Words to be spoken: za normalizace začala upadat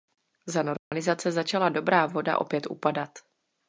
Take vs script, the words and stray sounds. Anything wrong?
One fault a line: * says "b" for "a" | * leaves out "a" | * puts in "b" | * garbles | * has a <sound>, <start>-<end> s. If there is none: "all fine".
* has a dropout, 0.8-0.9 s
* puts in "dobrá voda opět"